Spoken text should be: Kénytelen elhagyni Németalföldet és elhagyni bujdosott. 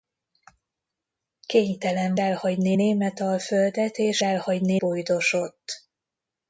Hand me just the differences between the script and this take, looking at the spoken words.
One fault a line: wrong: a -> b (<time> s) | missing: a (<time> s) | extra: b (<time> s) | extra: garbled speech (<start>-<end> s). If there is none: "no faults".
no faults